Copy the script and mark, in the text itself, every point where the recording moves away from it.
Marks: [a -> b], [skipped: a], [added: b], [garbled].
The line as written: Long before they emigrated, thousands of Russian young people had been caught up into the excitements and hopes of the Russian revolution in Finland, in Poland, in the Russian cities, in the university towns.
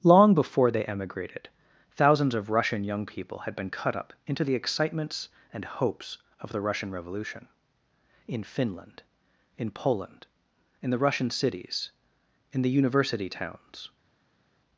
Long before they emigrated, thousands of Russian young people had been [caught -> cut] up into the excitements and hopes of the Russian revolution in Finland, in Poland, in the Russian cities, in the university towns.